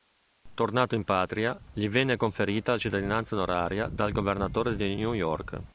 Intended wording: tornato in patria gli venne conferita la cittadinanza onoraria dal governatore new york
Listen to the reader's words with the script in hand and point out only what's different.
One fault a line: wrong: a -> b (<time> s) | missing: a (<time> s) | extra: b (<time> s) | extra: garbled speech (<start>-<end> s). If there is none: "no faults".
extra: di (4.8 s)